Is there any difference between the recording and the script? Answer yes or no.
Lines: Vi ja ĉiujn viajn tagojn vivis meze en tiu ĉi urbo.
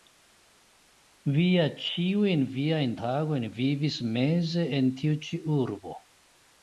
no